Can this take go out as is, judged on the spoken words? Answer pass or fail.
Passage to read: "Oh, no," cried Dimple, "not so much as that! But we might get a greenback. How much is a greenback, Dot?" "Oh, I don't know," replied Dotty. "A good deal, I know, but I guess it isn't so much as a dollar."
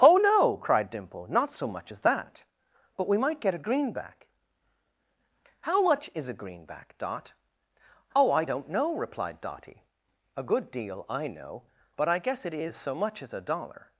fail